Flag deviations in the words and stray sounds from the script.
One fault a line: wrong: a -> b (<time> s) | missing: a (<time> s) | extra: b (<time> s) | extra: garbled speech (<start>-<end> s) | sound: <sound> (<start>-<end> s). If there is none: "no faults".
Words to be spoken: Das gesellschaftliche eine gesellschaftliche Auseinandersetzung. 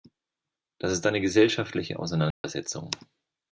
wrong: gesellschaftliche -> ist (0.9 s)
sound: dropout (2.3-2.4 s)